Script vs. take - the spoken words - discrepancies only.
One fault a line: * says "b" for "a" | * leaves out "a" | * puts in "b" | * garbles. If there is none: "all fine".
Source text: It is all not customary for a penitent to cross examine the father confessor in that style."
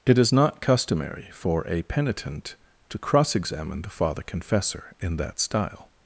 * leaves out "all"